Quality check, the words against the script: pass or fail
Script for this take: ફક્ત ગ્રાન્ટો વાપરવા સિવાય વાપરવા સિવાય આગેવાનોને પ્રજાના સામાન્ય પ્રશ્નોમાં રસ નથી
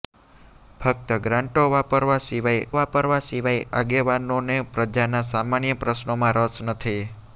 pass